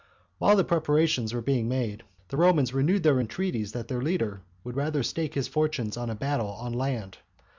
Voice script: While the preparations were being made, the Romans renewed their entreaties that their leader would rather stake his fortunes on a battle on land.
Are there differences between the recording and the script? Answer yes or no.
no